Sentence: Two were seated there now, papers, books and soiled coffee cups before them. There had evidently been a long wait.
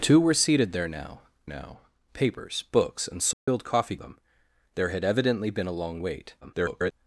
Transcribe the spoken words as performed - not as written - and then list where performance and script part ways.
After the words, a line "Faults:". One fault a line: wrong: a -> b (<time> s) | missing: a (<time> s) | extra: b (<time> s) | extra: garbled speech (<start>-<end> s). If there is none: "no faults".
Two were seated there now now, papers, books and soiled coffee them. There had evidently been a long wait. [garbled]
Faults:
extra: now (1.4 s)
missing: cups before (3.9 s)
extra: garbled speech (6.4-6.9 s)